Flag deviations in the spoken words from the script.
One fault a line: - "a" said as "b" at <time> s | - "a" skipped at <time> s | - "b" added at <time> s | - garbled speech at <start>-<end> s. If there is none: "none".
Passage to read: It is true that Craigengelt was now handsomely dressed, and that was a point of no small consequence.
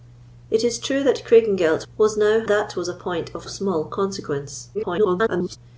- "handsomely dressed and" skipped at 2.4 s
- "no" skipped at 3.5 s
- garbled speech at 4.7-5.6 s